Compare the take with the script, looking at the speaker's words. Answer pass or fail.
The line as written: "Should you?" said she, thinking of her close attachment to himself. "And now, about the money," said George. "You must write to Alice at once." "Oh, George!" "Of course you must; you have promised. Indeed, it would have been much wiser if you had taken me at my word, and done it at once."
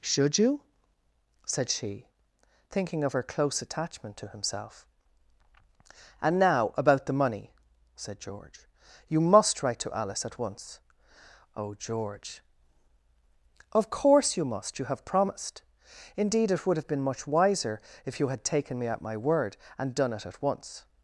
pass